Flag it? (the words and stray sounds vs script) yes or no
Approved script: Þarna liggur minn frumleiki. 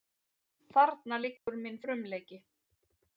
yes